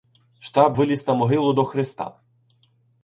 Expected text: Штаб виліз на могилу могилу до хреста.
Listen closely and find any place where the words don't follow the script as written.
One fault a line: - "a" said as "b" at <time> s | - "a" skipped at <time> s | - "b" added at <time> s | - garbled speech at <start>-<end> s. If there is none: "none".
- "могилу" skipped at 1.5 s